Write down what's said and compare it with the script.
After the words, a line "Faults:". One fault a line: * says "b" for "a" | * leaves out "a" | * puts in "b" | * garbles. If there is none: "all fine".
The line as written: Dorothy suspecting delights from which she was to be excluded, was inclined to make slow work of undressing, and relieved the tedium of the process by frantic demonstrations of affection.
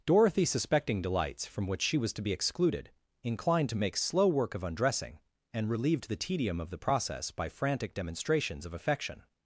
Dorothy suspecting delights from which she was to be excluded, inclined to make slow work of undressing, and relieved the tedium of the process by frantic demonstrations of affection.
Faults:
* leaves out "was"